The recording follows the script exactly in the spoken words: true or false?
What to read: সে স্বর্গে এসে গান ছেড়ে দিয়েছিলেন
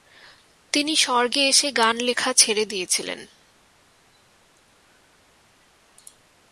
false